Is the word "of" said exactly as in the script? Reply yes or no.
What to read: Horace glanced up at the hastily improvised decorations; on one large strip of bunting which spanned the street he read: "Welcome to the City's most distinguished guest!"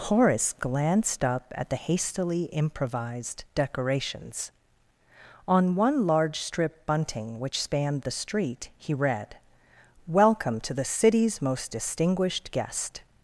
no